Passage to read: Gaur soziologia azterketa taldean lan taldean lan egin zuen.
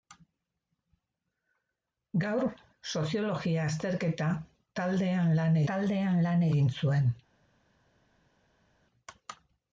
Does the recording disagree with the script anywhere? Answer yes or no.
no